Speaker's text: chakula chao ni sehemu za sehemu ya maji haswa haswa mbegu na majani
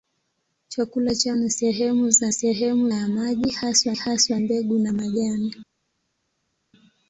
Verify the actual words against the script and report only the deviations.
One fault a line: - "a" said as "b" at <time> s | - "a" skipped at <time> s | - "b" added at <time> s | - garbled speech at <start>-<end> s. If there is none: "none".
none